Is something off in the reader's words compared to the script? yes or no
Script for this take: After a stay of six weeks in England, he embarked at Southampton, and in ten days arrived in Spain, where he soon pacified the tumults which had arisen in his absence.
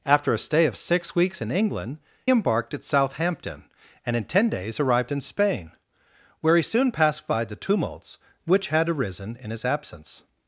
yes